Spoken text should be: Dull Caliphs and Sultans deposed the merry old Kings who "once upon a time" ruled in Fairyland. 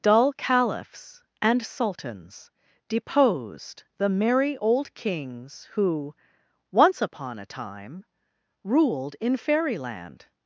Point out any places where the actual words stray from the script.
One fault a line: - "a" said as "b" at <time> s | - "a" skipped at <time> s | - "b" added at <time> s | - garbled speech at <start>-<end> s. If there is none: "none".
none